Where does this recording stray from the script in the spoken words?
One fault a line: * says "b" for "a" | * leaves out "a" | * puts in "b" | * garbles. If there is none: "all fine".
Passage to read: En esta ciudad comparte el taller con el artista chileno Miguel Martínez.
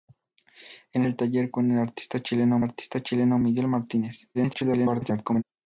* leaves out "esta ciudad comparte"
* puts in "artista chileno"
* garbles